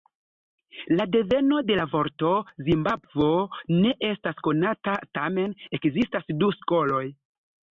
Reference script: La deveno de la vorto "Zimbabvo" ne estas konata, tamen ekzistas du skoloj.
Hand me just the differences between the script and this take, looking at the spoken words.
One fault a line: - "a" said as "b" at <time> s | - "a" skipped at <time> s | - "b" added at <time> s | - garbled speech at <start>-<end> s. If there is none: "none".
none